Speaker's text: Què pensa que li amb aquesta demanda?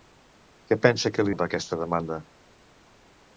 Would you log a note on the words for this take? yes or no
no